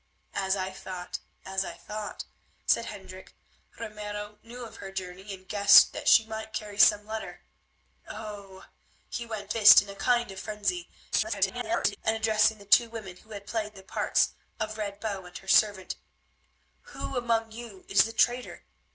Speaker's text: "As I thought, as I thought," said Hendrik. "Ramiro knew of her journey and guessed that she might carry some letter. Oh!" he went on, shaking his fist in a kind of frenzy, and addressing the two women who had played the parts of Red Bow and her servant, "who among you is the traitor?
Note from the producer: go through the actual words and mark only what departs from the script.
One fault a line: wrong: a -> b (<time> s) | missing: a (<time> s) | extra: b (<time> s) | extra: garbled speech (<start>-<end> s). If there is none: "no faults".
missing: on shaking his (9.6 s)
extra: garbled speech (11.1-12.0 s)